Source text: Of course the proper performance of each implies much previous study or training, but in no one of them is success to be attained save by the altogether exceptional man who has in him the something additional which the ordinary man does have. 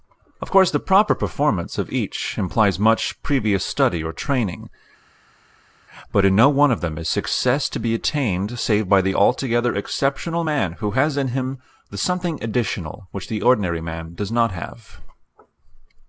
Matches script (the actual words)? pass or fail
fail